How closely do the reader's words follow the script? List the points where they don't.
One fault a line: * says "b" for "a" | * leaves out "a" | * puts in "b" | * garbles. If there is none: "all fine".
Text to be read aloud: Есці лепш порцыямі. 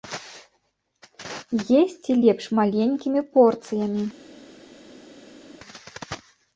* puts in "маленькімі"